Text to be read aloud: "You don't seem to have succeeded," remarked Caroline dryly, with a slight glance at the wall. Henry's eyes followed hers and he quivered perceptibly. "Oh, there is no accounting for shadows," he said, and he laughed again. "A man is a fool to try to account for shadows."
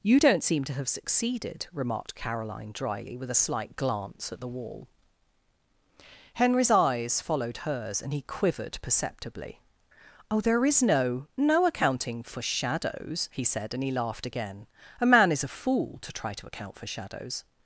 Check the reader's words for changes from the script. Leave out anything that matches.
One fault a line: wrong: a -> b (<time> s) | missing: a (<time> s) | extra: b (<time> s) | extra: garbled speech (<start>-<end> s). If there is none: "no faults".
extra: no (11.4 s)